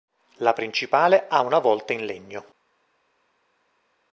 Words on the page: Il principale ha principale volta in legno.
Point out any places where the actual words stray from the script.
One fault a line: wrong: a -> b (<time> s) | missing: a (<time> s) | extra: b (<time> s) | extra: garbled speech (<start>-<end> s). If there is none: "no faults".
wrong: Il -> La (0.4 s)
wrong: principale -> una (1.4 s)